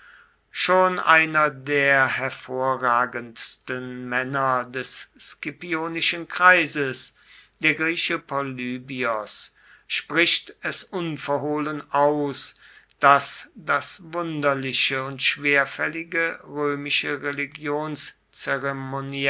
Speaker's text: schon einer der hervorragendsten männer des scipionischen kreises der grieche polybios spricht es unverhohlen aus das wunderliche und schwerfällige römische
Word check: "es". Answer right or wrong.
right